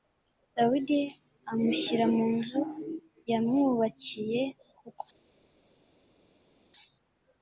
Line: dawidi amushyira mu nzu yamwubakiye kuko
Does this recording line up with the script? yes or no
yes